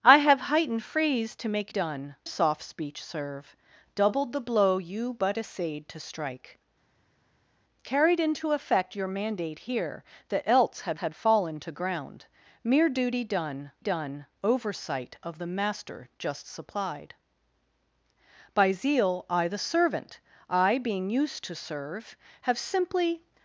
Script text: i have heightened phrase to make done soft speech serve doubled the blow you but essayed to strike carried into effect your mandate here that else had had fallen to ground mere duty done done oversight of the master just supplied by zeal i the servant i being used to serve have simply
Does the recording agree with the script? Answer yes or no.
yes